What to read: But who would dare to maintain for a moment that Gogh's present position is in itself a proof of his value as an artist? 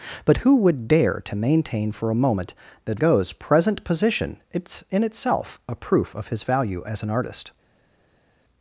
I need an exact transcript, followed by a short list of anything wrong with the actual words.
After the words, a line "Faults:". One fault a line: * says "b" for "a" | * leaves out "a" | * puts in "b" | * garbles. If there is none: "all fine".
But who would dare to maintain for a moment that Gogh's present position is in itself a proof of his value as an artist?
Faults:
all fine